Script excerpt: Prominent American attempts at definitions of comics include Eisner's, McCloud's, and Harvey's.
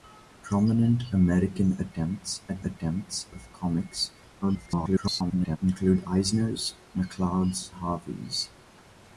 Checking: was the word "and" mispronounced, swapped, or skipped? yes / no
yes